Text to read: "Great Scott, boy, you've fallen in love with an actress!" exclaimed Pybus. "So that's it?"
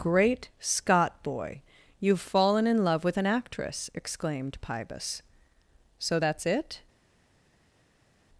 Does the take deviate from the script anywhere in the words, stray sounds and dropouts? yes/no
no